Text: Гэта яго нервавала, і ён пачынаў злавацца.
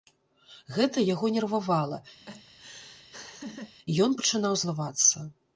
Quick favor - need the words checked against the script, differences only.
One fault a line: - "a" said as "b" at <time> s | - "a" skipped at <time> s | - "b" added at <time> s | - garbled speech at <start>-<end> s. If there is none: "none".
none